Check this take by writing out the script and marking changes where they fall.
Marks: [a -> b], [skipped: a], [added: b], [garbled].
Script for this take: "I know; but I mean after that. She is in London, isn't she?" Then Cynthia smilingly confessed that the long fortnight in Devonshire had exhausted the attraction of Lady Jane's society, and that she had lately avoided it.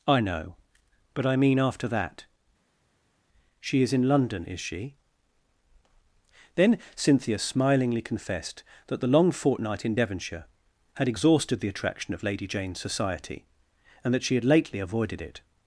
"I know; but I mean after that. She is in London, [isn't -> is] she?" Then Cynthia smilingly confessed that the long fortnight in Devonshire had exhausted the attraction of Lady Jane's society, and that she had lately avoided it.